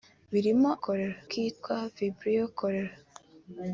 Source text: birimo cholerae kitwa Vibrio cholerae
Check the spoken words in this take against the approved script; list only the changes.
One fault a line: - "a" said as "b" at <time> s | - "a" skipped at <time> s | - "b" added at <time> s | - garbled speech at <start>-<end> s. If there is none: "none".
none